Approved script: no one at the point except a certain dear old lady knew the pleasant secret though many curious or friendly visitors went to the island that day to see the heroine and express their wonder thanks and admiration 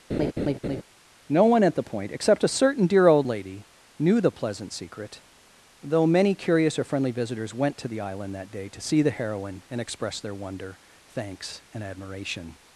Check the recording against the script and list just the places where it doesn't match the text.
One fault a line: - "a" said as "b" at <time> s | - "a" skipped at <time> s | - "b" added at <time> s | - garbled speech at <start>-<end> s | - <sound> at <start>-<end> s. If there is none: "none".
- laugh at 0.1-0.8 s